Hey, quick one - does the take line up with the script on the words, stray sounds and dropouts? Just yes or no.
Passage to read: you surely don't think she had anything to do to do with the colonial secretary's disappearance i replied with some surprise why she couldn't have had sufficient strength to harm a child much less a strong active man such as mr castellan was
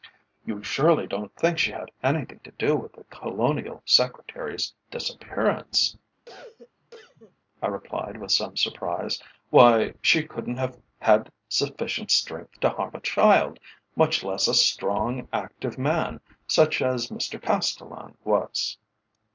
no